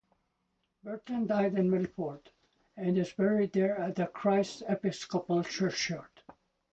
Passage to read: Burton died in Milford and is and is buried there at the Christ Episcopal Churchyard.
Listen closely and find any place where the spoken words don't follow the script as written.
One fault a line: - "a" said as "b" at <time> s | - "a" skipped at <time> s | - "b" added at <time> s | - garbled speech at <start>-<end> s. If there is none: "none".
- "and is" skipped at 3.1 s